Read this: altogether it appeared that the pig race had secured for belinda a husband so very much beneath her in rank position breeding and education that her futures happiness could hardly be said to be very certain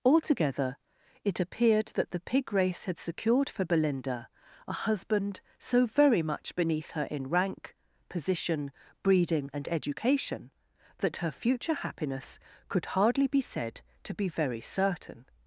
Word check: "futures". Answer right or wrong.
wrong